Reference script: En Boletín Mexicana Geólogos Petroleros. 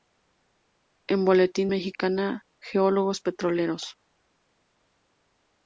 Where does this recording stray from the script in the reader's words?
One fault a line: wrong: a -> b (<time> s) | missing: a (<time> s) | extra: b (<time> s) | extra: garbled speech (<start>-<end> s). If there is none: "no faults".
no faults